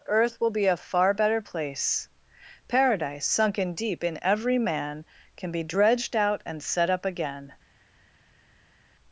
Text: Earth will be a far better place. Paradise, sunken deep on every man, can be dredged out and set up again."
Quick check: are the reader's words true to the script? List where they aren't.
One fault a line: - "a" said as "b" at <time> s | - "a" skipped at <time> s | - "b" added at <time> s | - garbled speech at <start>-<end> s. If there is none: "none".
- "on" said as "in" at 4.0 s